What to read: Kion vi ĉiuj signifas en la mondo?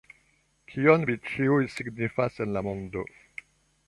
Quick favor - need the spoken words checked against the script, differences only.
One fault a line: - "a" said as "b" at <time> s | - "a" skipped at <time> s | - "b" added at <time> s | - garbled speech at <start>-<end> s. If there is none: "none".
none